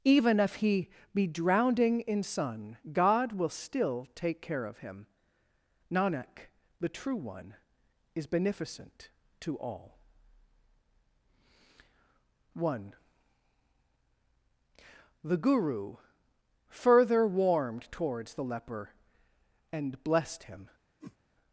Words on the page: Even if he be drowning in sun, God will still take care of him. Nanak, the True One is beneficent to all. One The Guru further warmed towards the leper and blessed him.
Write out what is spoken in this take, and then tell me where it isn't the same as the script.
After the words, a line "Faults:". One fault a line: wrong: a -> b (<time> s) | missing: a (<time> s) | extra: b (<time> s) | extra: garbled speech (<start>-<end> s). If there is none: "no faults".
Even if he be drowning in sun, God will still take care of him. Nanak, the True One is beneficent to all. One The Guru further warmed towards the leper and blessed him.
Faults:
no faults